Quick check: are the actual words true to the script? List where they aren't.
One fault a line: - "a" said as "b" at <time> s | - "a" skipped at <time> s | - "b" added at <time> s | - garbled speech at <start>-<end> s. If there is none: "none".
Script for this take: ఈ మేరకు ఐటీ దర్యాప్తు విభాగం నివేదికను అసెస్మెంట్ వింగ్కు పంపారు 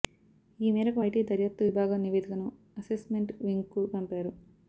none